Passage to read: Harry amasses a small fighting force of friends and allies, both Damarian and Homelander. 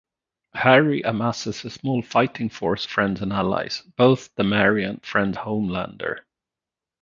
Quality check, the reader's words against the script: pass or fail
fail